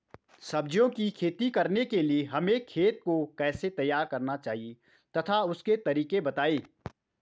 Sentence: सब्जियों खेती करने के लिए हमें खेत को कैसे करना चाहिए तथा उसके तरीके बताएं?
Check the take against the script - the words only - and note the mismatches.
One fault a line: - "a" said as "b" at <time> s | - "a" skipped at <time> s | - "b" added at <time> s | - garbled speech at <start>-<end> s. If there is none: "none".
- "की" added at 0.9 s
- "तैयार" added at 3.7 s